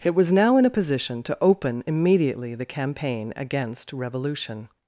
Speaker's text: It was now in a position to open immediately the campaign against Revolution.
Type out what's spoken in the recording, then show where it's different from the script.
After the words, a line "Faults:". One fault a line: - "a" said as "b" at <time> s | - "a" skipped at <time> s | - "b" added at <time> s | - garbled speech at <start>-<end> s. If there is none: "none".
It was now in a position to open immediately the campaign against Revolution.
Faults:
none